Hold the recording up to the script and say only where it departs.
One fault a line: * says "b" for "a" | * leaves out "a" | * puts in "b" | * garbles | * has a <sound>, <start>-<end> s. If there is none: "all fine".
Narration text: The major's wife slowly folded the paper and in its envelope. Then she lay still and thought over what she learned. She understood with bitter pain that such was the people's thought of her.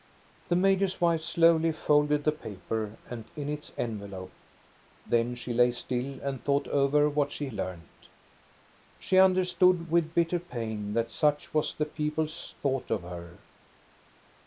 all fine